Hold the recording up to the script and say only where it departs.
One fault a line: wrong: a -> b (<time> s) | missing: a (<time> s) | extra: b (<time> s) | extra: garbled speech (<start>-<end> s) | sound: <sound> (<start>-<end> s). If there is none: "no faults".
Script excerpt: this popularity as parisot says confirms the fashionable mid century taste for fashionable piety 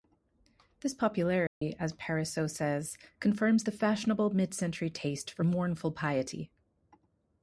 sound: dropout (1.5-1.6 s)
wrong: fashionable -> mournful (5.4 s)